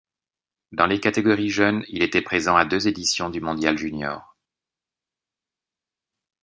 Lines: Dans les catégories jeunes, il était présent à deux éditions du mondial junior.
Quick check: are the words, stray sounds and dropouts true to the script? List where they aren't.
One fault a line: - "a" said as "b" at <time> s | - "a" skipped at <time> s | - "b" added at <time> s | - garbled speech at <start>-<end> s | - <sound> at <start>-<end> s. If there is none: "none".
none